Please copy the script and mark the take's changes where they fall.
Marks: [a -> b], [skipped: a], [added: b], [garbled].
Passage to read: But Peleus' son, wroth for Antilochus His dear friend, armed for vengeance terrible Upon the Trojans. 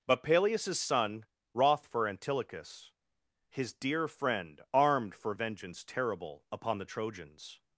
But Peleus' son, wroth for Antilochus His dear friend, armed for vengeance terrible Upon the Trojans.